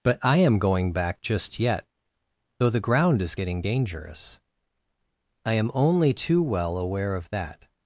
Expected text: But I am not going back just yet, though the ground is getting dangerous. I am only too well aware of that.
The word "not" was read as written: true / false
false